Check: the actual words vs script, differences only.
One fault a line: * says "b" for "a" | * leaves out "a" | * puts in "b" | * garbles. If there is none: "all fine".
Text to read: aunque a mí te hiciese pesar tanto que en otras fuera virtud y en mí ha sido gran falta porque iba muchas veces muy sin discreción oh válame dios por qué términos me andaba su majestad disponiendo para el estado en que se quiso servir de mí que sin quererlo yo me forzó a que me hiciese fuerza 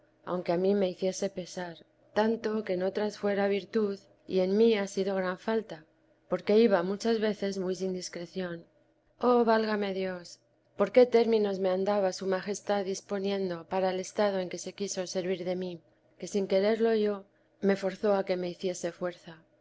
* says "me" for "te"